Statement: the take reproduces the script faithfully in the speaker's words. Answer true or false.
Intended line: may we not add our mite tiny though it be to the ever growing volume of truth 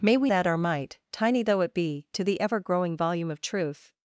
false